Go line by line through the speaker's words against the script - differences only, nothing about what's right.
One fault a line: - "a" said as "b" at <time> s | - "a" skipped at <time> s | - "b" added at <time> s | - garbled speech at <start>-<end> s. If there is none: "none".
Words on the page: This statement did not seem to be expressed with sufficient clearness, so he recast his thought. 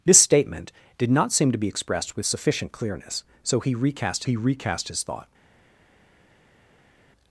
- "he recast" added at 4.2 s